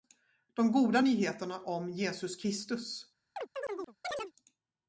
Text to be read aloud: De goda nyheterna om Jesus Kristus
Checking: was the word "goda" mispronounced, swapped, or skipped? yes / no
no